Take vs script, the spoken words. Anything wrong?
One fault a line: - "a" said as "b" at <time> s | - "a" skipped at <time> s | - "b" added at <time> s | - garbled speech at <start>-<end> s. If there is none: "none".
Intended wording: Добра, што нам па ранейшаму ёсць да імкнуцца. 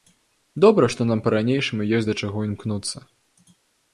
- "чаго" added at 2.2 s